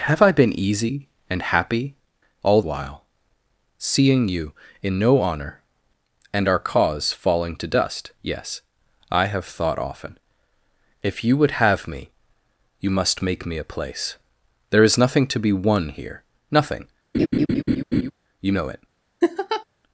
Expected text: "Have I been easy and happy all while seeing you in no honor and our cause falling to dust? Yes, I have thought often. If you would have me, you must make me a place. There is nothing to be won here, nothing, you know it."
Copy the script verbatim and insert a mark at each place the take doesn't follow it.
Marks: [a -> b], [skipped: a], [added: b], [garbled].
"Have I been easy and happy all while seeing you in no honor and our cause falling to dust? Yes, I have thought often. If you would have me, you must make me a place. There is nothing to be won here, nothing, you know it."